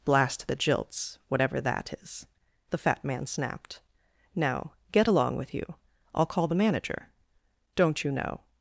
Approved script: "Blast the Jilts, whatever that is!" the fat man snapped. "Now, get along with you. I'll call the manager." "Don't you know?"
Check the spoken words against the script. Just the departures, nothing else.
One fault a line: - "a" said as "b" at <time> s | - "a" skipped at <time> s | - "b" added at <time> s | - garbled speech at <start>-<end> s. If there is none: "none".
none